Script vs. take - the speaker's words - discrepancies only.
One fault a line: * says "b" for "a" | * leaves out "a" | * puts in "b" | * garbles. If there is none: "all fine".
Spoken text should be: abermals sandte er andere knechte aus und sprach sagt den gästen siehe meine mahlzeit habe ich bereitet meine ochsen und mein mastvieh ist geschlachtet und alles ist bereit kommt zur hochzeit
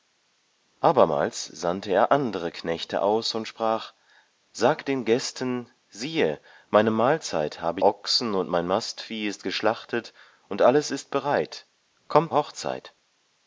* leaves out "ich bereitet meine"
* leaves out "zur"